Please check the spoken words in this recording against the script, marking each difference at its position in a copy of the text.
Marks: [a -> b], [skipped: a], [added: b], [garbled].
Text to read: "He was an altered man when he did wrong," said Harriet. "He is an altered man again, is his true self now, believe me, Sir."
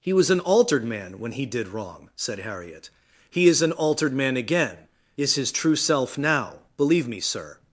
"He was an altered man when he did wrong," said Harriet. "He is an altered man again, is his true self now, believe me, Sir."